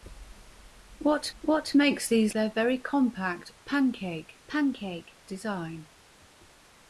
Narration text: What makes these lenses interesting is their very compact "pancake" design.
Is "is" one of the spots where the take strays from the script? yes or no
yes